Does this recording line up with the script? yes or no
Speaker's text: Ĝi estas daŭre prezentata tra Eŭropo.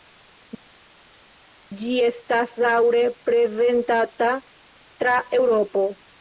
yes